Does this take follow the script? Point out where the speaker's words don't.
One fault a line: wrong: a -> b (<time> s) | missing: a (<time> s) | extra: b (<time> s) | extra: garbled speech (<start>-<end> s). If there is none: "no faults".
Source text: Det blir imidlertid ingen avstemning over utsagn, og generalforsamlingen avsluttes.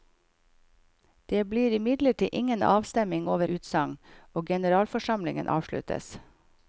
no faults